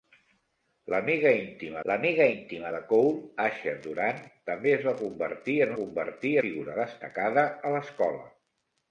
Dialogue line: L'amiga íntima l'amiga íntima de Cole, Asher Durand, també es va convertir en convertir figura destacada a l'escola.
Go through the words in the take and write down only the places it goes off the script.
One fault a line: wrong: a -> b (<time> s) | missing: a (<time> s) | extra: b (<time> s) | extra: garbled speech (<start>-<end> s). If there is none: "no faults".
no faults